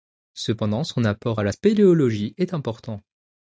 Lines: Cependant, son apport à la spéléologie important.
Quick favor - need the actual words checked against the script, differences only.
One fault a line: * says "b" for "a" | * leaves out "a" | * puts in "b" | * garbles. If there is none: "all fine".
* puts in "est"